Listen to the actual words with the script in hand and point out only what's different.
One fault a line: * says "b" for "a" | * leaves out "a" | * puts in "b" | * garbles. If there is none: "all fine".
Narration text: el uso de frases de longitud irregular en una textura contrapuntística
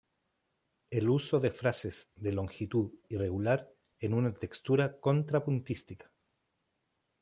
all fine